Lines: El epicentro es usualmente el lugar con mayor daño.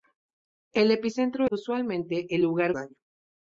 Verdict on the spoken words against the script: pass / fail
fail